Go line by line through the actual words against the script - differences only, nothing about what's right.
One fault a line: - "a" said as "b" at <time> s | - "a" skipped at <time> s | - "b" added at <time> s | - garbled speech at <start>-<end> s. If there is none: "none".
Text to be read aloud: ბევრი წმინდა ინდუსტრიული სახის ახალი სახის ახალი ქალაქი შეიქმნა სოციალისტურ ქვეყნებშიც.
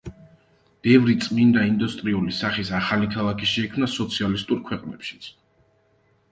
- "სახის ახალი" skipped at 3.1 s